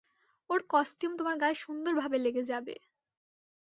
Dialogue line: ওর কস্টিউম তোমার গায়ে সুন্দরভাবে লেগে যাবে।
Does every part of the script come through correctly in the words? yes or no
yes